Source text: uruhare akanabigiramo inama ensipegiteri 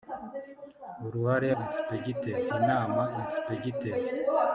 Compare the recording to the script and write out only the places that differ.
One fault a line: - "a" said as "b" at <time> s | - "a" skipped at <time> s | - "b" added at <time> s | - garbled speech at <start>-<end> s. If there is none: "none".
- "akanabigiramo" said as "ensipegiteri" at 1.6 s